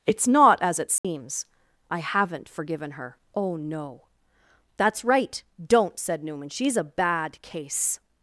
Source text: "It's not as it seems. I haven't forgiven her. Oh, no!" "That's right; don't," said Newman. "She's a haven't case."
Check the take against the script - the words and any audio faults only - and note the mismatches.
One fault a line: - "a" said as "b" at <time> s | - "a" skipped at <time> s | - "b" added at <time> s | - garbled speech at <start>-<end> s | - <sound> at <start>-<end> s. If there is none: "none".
- dropout at 1.0-1.0 s
- "haven't" said as "bad" at 6.8 s